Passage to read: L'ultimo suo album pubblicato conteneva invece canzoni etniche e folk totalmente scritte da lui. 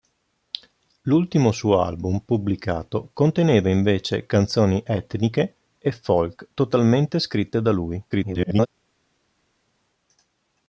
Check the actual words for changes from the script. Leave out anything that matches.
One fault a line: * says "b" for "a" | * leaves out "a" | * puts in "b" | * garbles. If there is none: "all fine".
* garbles